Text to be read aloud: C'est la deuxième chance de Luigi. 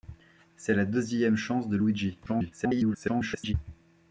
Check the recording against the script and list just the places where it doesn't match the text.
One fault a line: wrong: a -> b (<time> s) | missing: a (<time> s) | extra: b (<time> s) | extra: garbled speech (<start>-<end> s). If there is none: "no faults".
extra: garbled speech (2.3-3.5 s)